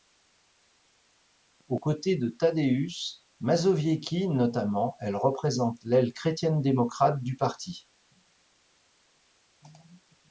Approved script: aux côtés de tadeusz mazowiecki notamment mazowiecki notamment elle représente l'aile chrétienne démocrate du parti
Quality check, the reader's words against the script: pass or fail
fail